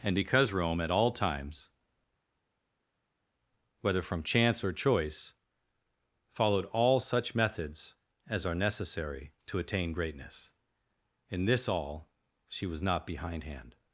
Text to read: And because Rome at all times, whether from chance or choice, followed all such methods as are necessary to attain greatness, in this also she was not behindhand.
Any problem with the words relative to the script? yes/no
yes